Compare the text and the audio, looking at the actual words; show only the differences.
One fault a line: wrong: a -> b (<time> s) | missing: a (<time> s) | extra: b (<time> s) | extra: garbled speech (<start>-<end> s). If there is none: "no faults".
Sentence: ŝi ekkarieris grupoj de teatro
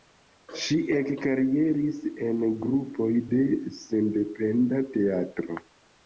extra: en (2.3 s)
extra: sendependa (3.8 s)